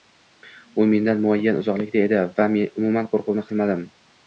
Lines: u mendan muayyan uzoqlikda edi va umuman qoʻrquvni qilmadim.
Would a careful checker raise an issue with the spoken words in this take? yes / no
no